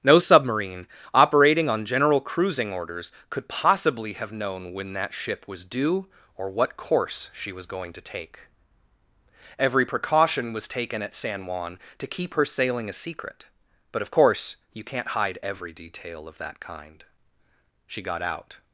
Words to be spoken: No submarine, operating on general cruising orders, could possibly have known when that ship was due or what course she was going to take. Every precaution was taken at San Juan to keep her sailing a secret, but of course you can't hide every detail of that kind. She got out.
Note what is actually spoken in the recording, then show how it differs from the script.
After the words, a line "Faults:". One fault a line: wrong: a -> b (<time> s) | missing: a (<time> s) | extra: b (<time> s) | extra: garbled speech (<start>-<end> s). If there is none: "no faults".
No submarine, operating on general cruising orders, could possibly have known when that ship was due or what course she was going to take. Every precaution was taken at San Juan to keep her sailing a secret, but of course you can't hide every detail of that kind. She got out.
Faults:
no faults